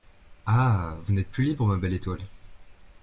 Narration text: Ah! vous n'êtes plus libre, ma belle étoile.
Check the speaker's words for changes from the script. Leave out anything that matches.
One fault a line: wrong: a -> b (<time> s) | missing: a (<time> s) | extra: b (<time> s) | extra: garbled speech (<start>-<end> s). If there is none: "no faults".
no faults